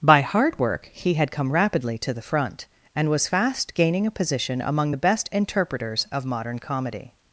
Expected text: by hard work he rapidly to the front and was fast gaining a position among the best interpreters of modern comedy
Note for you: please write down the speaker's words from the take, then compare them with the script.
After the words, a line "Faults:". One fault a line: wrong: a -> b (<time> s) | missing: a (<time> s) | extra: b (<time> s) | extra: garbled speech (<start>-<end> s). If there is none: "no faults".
by hard work he had come rapidly to the front and was fast gaining a position among the best interpreters of modern comedy
Faults:
extra: had come (1.1 s)